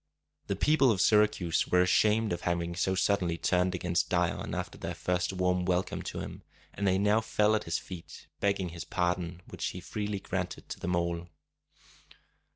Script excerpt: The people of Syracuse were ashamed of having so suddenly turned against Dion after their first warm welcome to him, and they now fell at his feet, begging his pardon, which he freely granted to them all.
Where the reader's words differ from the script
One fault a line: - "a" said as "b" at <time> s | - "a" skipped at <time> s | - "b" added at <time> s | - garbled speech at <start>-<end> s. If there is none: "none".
none